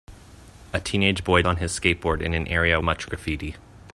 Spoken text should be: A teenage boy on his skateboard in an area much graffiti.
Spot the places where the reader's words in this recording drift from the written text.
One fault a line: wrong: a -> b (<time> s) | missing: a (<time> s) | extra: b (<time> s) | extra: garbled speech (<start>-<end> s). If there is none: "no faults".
no faults